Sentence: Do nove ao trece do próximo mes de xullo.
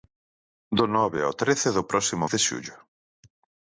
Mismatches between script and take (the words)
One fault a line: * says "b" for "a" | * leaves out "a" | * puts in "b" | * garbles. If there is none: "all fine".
* leaves out "mes"